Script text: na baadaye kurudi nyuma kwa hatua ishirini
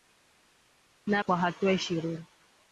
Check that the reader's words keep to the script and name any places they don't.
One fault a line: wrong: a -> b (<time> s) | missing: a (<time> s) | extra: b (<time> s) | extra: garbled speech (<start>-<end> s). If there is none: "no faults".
missing: baadaye kurudi nyuma (1.2 s)